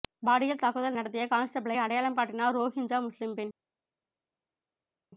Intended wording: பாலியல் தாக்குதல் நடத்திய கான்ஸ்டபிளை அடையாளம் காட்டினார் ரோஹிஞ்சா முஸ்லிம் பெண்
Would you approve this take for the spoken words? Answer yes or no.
yes